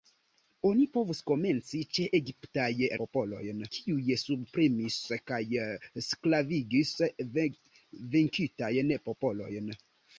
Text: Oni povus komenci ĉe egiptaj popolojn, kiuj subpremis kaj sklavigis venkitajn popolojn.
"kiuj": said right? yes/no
yes